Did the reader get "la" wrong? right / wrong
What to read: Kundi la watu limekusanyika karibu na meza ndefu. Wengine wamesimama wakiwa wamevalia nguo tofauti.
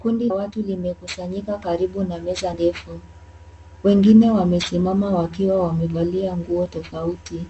wrong